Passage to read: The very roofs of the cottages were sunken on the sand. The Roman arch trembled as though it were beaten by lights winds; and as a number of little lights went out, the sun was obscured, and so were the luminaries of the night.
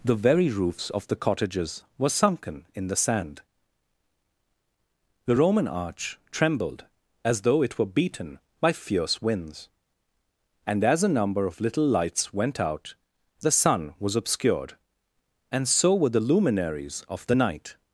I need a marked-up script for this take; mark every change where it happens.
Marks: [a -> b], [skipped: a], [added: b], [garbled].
The very roofs of the cottages were sunken [on -> in] the sand. The Roman arch trembled as though it were beaten by [lights -> fierce] winds; and as a number of little lights went out, the sun was obscured, and so were the luminaries of the night.